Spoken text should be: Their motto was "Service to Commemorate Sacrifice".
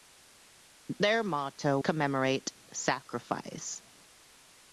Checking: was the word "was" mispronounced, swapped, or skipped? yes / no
yes